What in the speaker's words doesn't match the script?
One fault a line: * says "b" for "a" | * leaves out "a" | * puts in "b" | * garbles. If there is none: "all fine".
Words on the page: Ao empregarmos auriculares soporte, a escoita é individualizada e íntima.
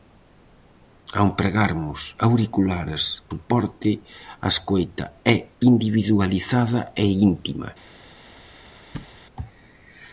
all fine